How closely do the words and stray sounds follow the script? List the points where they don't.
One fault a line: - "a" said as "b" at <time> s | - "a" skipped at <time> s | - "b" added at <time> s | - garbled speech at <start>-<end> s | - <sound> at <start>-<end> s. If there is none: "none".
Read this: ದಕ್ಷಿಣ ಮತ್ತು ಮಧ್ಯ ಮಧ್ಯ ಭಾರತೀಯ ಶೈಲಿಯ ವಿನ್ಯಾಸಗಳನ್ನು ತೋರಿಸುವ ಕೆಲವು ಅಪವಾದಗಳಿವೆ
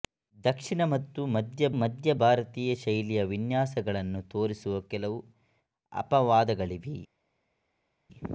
none